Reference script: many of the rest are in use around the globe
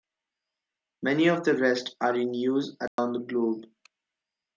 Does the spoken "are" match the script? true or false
true